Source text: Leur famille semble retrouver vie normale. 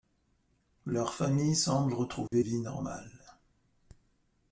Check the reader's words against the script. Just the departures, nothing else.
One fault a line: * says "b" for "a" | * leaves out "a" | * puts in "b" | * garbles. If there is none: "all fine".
all fine